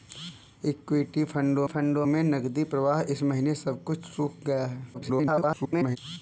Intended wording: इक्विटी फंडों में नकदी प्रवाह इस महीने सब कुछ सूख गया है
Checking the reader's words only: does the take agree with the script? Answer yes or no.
no